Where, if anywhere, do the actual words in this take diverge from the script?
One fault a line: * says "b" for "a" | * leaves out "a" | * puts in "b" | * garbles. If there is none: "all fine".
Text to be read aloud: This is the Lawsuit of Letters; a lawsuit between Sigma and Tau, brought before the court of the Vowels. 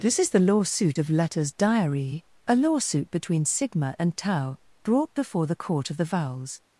* puts in "diary"